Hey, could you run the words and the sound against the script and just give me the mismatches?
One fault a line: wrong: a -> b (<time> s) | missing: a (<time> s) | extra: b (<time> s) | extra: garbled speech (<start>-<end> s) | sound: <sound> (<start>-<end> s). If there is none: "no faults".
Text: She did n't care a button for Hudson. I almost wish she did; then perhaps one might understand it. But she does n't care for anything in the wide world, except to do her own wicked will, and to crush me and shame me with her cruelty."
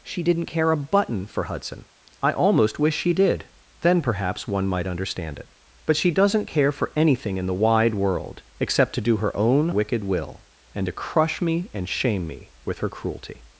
no faults